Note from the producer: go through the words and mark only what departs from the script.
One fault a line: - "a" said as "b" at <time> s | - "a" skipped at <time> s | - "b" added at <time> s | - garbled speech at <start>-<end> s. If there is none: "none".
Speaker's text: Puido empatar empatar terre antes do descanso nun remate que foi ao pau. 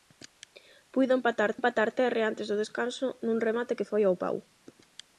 none